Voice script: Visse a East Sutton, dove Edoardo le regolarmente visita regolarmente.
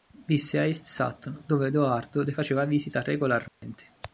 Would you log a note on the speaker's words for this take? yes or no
yes